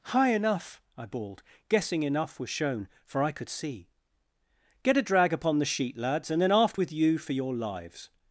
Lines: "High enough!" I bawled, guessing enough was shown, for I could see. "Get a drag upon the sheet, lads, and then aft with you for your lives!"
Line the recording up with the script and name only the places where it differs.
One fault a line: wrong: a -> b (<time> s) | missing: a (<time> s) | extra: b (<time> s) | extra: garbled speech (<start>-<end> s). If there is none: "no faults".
no faults